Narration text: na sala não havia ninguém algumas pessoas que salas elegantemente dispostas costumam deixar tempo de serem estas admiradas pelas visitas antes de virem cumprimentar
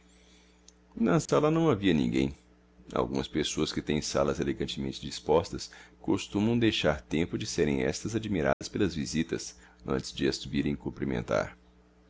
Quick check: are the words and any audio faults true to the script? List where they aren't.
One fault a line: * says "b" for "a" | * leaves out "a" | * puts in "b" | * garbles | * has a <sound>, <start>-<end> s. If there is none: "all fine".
* has a dropout, 1.3-1.3 s
* puts in "têm"
* has a dropout, 8.5-8.6 s
* puts in "as"